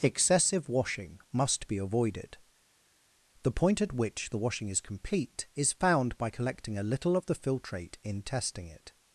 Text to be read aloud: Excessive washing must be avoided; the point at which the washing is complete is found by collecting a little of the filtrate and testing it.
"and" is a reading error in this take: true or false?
true